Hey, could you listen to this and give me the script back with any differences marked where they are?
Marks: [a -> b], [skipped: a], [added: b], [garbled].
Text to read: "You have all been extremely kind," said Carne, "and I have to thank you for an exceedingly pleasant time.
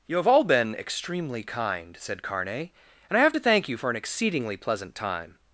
"You have all been extremely kind," said Carne, "and I have to thank you for an exceedingly pleasant time.